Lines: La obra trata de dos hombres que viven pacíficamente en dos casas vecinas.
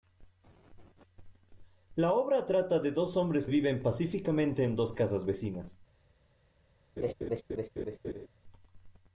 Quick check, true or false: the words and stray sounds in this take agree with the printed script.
false